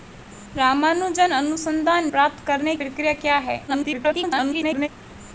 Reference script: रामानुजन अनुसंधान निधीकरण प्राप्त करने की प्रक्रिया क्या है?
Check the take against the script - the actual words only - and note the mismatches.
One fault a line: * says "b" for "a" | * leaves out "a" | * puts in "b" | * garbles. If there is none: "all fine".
* leaves out "निधीकरण"
* leaves out "की"
* garbles